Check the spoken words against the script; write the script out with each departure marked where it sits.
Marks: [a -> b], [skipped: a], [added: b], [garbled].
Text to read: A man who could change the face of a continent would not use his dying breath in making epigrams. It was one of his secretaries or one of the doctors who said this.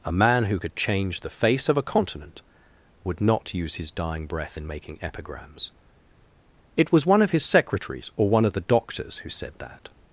A man who could change the face of a continent would not use his dying breath in making epigrams. It was one of his secretaries or one of the doctors who said [this. -> that]